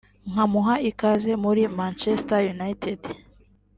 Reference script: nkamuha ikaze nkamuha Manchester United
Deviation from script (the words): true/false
true